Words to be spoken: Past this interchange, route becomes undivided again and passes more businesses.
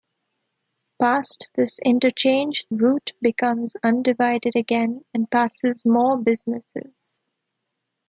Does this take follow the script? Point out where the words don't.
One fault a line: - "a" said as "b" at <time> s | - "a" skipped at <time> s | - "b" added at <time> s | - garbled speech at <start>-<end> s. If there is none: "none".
none